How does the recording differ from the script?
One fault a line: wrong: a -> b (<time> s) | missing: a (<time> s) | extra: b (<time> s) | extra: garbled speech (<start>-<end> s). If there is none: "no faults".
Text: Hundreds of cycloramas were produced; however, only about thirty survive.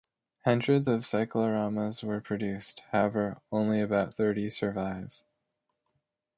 no faults